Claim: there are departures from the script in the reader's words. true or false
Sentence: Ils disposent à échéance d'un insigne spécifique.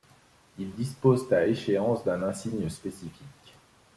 false